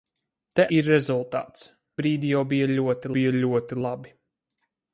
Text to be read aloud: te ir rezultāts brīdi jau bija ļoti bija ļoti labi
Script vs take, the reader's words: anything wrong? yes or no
no